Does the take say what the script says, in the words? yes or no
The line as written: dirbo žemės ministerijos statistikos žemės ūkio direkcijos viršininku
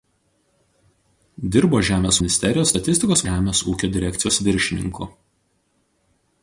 yes